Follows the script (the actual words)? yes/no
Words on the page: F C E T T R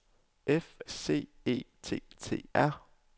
yes